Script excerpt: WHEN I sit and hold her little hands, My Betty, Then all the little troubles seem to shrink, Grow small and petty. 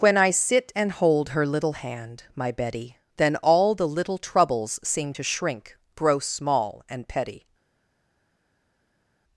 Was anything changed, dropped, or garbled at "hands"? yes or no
yes